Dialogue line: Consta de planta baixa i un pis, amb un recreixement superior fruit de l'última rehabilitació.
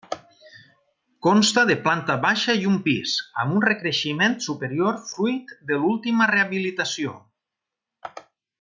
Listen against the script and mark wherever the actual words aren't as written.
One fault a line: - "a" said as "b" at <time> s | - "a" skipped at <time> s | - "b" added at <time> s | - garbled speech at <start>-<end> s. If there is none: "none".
none